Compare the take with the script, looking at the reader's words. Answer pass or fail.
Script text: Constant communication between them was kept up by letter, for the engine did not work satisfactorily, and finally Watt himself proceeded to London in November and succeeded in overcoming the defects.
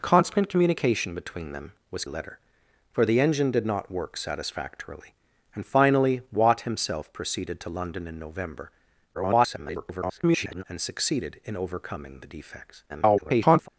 fail